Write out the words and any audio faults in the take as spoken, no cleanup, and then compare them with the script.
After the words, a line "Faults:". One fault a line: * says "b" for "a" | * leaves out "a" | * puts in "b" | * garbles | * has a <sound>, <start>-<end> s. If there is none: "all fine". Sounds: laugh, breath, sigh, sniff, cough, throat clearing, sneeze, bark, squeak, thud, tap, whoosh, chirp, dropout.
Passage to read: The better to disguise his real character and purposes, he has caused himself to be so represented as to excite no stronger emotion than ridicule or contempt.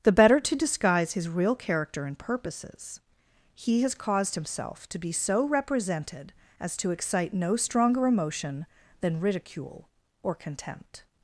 The better to disguise his real character and purposes, he has caused himself to be so represented as to excite no stronger emotion than ridicule or contempt.
Faults:
all fine